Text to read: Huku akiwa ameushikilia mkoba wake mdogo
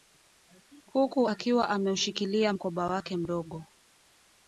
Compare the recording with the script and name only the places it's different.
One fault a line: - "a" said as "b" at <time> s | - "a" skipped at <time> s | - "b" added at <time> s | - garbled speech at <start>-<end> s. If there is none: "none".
none